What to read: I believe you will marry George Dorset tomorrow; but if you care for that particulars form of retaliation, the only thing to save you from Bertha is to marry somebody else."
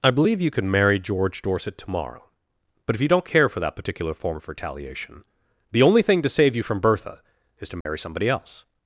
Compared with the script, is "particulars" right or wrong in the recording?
wrong